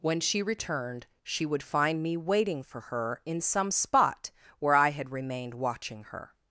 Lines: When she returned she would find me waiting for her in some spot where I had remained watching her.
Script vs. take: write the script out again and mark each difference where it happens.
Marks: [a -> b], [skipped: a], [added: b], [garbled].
When she returned she would find me waiting for her in some spot where I had remained watching her.